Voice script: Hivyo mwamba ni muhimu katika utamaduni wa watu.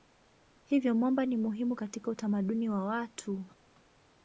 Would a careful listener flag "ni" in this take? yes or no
no